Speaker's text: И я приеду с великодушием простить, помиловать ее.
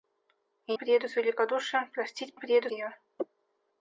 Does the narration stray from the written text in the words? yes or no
yes